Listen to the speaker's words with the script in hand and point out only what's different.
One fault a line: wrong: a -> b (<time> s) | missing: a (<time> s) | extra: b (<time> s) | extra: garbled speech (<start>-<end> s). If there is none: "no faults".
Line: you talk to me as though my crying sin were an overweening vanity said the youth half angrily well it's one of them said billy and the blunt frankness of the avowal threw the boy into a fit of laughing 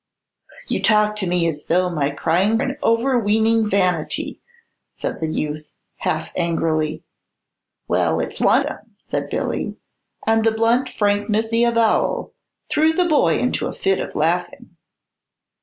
missing: sin were (2.6 s)
missing: of (8.7 s)
missing: of (11.5 s)